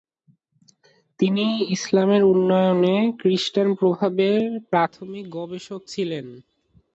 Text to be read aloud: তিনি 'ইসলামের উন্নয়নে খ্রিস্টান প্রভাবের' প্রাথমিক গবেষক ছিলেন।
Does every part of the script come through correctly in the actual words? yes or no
yes